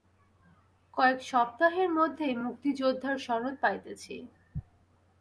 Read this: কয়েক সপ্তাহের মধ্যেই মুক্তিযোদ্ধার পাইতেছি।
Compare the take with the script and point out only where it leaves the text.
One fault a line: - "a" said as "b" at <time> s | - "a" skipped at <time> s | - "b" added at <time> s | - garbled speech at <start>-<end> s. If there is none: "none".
- "সনদ" added at 3.2 s